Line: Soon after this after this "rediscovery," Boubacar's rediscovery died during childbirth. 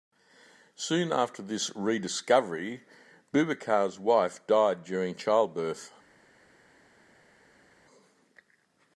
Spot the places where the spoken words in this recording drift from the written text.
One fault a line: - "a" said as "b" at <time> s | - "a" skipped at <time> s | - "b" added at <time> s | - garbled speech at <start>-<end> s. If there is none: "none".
- "after this" skipped at 1.7 s
- "rediscovery" said as "wife" at 4.0 s